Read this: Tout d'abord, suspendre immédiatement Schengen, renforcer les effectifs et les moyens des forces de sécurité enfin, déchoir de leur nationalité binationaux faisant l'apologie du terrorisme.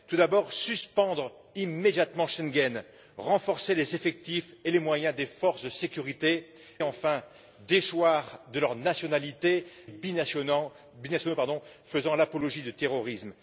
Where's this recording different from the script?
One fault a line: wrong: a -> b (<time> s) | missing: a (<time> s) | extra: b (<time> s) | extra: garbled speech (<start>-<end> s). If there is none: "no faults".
no faults